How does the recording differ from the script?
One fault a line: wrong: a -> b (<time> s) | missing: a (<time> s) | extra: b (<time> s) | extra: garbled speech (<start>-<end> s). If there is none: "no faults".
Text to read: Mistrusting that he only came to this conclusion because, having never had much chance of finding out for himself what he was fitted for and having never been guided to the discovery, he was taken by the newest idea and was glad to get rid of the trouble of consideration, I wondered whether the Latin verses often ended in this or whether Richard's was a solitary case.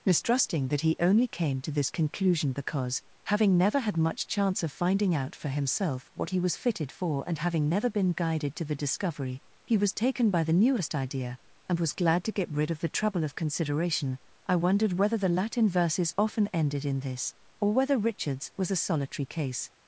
no faults